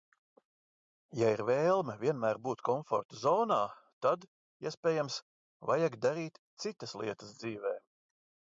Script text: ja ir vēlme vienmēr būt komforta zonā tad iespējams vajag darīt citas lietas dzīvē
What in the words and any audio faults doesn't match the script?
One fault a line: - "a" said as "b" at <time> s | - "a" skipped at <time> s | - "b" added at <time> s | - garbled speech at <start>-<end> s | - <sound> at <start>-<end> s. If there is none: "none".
none